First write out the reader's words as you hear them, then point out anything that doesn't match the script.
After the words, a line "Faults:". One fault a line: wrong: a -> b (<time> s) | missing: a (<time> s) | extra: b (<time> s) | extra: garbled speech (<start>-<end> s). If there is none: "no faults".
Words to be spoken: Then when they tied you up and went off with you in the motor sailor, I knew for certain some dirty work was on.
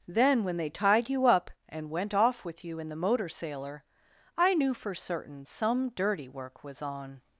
Then when they tied you up and went off with you in the motor sailor, I knew for certain some dirty work was on.
Faults:
no faults